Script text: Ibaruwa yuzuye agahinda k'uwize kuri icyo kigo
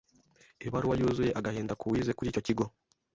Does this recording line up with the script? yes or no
yes